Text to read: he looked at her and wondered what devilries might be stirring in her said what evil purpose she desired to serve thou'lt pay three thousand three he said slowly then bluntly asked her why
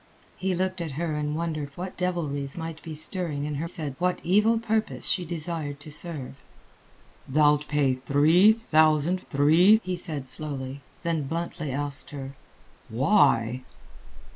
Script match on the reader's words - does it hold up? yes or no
yes